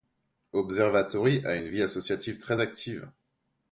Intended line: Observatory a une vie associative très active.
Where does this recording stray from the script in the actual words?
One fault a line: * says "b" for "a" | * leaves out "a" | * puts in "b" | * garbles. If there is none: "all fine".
all fine